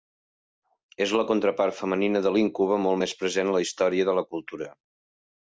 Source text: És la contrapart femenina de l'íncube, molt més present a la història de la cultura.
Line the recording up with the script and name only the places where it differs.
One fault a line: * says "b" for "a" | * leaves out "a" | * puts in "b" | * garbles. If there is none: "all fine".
all fine